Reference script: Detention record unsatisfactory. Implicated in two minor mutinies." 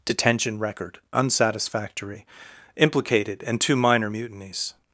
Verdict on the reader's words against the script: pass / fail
fail